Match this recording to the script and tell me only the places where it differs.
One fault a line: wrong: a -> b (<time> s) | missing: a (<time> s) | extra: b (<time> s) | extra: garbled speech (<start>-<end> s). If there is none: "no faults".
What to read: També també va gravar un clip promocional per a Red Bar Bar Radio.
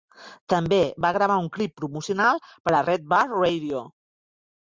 missing: també (0.8 s)
missing: Bar (3.2 s)